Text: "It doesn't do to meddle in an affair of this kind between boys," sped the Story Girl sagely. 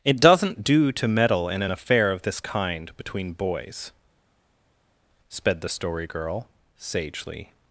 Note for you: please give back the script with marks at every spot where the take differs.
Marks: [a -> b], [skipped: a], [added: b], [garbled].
"It doesn't do to meddle in an affair of this kind between boys," sped the Story Girl sagely.